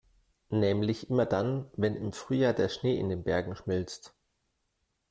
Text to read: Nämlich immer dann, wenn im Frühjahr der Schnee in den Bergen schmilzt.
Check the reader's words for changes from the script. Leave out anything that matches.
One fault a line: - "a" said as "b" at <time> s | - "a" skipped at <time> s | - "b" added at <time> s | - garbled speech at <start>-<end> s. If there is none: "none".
none